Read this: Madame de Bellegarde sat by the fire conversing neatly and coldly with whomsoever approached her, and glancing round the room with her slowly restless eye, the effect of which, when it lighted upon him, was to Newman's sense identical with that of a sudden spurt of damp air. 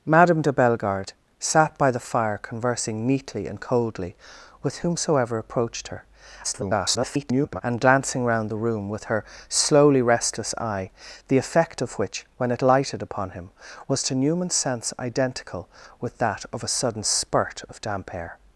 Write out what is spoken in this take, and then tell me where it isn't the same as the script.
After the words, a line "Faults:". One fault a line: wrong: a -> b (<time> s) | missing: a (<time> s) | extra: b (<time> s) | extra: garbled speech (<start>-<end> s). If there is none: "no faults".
Madame de Bellegarde sat by the fire conversing neatly and coldly with whomsoever approached her, [garbled] and glancing round the room with her slowly restless eye, the effect of which, when it lighted upon him, was to Newman's sense identical with that of a sudden spurt of damp air.
Faults:
extra: garbled speech (6.4-7.6 s)